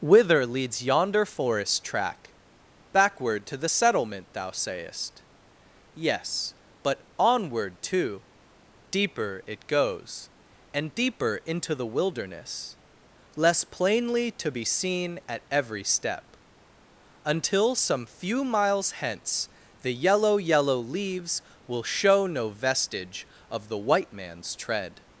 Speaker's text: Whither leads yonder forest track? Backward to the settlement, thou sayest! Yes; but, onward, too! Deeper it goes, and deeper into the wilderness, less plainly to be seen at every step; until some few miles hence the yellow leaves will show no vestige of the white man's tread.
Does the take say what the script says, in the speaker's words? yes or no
no